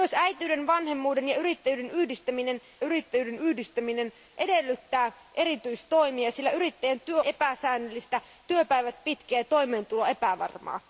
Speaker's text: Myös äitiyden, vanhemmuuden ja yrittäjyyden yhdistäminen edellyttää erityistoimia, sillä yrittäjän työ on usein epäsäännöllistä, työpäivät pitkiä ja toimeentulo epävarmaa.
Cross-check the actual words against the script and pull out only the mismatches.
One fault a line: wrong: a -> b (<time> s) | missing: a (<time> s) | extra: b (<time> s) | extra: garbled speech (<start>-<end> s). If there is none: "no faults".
extra: yrittäjyyden yhdistäminen (2.8 s)
missing: on usein (7.2 s)